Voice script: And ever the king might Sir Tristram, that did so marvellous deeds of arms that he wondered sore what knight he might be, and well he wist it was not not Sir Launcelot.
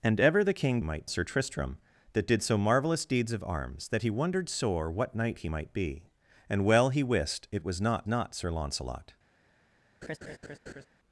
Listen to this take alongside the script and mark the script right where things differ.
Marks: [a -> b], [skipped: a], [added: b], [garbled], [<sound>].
And ever the king might Sir Tristram, that did so marvellous deeds of arms that he wondered sore what knight he might be, and well he wist it was not not Sir Launcelot. [laugh]